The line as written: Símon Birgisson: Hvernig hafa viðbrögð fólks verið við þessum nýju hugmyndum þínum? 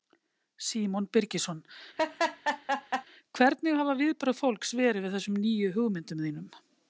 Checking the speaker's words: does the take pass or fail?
pass